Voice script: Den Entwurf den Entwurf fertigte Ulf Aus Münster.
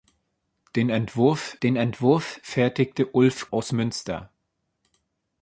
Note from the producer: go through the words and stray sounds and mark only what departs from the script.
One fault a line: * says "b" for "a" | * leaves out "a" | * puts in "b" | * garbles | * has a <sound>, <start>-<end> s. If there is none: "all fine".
all fine